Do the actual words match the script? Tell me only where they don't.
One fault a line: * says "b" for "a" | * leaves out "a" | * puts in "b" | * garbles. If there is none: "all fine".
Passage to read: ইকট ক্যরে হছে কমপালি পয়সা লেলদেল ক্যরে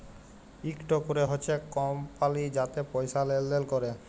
* puts in "যাতে"